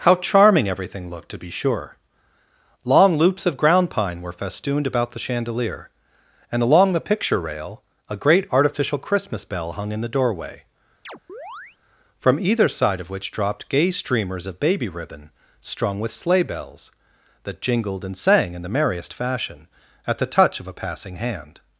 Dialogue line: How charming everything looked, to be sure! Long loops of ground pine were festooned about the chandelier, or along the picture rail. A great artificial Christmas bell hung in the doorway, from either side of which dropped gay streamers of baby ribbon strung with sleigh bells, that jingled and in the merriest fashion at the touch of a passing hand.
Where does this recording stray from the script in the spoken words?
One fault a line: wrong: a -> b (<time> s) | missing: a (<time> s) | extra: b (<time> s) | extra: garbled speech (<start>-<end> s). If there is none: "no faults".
wrong: or -> and (6.5 s)
extra: sang (18.2 s)